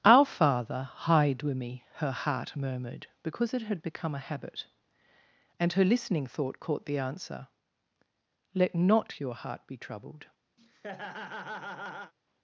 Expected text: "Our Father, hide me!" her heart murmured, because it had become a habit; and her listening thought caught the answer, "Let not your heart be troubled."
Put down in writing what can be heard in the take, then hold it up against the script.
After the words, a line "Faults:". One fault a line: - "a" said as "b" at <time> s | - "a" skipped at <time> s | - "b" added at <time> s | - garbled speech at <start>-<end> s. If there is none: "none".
"Our Father, hide with me!" her heart murmured, because it had become a habit; and her listening thought caught the answer, "Let not your heart be troubled."
Faults:
- "with" added at 1.4 s